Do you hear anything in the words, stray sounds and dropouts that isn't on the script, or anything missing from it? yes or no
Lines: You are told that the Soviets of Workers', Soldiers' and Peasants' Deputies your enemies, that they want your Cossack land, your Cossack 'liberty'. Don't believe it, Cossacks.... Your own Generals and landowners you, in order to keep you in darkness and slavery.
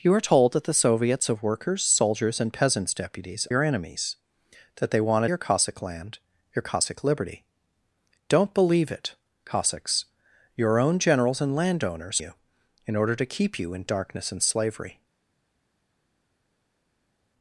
no